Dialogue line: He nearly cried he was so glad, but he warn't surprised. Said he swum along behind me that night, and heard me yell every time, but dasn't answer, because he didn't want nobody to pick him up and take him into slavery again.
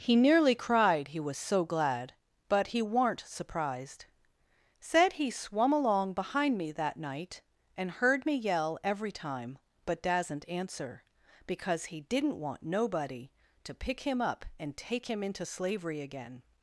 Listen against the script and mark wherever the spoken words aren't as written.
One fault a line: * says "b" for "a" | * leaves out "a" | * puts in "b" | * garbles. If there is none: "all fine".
all fine